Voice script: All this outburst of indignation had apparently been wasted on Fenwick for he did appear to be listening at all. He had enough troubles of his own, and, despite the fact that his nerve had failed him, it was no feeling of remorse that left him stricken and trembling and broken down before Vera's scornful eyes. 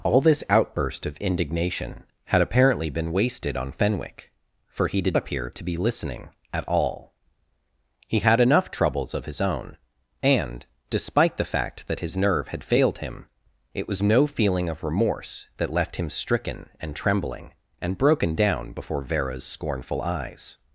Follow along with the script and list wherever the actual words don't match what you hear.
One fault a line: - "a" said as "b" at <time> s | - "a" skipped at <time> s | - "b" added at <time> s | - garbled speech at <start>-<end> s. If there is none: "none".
none